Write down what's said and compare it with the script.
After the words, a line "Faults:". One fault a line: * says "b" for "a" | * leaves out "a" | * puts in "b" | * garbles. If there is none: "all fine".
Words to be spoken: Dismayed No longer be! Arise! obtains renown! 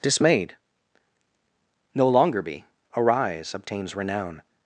Dismayed No longer be! Arise! obtains renown!
Faults:
all fine